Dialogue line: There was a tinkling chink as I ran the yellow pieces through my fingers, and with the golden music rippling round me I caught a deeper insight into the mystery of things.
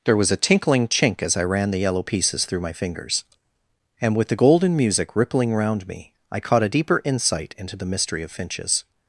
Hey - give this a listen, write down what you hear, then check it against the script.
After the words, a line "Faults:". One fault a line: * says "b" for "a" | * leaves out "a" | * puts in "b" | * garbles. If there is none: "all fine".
There was a tinkling chink as I ran the yellow pieces through my fingers, and with the golden music rippling round me I caught a deeper insight into the mystery of finches.
Faults:
* says "finches" for "things"